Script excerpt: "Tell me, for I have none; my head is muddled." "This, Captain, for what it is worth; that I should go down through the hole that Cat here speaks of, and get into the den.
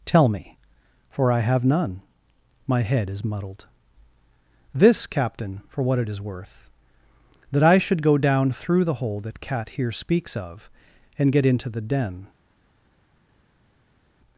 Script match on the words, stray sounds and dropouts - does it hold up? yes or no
yes